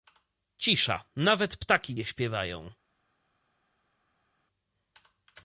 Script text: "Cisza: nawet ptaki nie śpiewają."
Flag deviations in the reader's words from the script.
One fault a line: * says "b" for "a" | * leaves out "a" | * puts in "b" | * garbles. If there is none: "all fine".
all fine